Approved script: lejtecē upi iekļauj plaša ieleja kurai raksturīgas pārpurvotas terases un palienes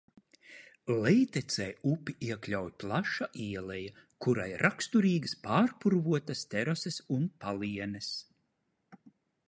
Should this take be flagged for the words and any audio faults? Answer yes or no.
no